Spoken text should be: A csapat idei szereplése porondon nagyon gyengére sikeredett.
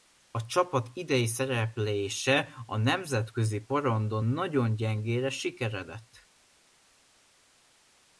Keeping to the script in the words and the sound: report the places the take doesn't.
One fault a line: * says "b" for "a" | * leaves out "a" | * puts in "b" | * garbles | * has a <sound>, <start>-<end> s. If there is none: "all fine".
* puts in "a nemzetközi"